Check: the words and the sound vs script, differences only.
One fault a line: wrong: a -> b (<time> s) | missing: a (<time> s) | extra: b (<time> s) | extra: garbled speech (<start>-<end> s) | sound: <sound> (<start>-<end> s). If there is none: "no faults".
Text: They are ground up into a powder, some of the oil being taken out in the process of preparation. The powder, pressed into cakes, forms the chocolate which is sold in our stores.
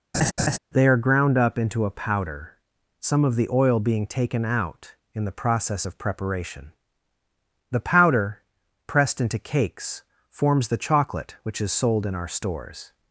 sound: laugh (0.1-0.6 s)